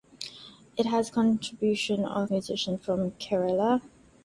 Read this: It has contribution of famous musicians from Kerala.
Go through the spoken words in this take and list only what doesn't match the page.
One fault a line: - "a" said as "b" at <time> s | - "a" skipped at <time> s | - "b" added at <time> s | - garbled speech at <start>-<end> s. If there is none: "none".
- "famous" skipped at 2.3 s